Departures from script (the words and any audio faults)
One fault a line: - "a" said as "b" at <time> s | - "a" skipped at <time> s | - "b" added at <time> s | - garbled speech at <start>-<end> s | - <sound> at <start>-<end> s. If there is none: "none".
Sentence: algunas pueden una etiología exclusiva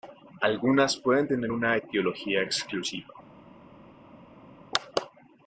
- "tener" added at 1.3 s